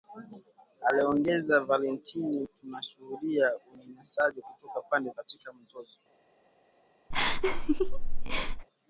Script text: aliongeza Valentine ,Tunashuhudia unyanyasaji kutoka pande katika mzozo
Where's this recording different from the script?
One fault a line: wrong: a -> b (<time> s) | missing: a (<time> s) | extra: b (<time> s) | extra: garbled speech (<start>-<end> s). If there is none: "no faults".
no faults